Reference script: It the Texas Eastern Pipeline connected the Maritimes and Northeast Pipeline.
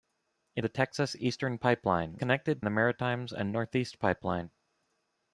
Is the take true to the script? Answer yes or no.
yes